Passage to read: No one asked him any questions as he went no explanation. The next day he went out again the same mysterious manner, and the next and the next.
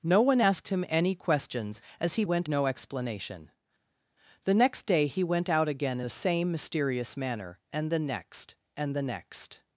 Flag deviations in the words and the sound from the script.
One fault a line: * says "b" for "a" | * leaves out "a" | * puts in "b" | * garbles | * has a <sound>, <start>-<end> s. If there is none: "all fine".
all fine